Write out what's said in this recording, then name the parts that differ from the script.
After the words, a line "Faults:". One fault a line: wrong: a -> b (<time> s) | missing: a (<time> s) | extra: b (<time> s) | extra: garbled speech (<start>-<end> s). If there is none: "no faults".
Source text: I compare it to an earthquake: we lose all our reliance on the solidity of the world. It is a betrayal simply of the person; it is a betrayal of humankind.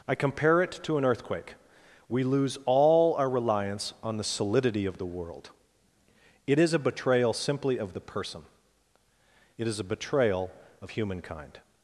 I compare it to an earthquake: we lose all our reliance on the solidity of the world. It is a betrayal simply of the person; it is a betrayal of humankind.
Faults:
no faults